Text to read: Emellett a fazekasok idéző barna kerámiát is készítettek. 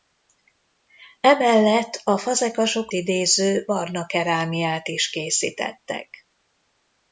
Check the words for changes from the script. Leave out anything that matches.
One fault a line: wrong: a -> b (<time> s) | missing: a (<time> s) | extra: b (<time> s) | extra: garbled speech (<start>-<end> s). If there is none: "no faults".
no faults